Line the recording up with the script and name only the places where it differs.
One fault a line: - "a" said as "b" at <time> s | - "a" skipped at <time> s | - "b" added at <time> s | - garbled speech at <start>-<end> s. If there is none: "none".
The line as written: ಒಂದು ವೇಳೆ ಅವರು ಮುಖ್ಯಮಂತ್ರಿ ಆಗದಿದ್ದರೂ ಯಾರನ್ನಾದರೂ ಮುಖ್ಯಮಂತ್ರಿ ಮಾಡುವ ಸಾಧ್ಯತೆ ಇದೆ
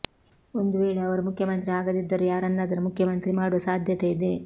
none